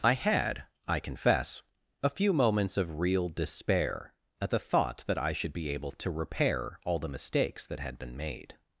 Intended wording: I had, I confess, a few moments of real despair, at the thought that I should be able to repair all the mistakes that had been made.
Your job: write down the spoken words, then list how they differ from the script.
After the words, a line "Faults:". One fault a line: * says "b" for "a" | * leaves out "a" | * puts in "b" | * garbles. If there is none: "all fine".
I had, I confess, a few moments of real despair, at the thought that I should be able to repair all the mistakes that had been made.
Faults:
all fine